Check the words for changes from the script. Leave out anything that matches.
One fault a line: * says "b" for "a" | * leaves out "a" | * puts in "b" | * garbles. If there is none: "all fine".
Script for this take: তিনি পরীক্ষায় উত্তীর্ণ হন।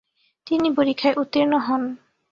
all fine